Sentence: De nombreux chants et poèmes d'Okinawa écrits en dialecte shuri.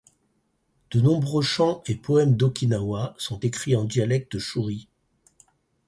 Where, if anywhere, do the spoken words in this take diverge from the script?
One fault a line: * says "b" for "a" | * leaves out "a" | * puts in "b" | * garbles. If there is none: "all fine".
* puts in "sont"